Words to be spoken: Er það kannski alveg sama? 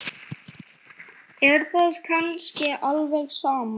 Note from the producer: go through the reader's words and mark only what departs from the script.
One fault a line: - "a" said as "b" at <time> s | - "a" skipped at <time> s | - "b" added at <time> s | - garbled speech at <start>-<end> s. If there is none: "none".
none